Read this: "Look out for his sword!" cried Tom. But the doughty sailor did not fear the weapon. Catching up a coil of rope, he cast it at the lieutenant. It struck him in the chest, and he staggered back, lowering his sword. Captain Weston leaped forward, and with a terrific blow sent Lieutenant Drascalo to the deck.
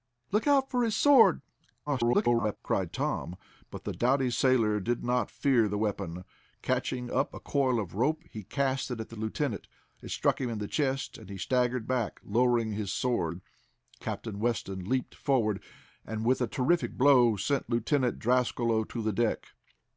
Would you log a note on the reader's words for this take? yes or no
yes